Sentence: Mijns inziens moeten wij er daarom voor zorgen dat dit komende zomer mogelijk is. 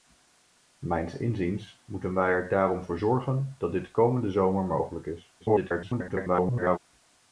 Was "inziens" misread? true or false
false